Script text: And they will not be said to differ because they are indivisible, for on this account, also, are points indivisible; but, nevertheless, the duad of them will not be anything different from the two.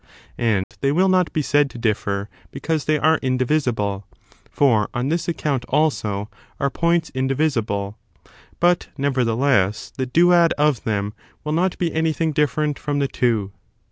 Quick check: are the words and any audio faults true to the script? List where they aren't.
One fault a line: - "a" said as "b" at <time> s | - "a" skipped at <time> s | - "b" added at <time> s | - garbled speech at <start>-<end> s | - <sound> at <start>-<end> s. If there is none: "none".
- dropout at 0.6-0.7 s